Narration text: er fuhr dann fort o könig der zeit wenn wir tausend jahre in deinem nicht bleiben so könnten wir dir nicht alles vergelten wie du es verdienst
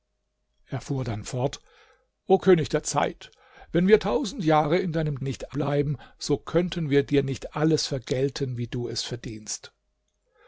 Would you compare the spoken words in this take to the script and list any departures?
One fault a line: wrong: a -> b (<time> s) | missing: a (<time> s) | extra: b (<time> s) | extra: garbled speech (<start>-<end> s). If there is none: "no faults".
no faults